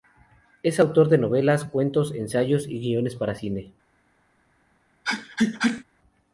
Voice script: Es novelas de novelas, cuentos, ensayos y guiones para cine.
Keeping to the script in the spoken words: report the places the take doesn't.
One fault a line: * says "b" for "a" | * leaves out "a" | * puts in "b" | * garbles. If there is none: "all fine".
* says "autor" for "novelas"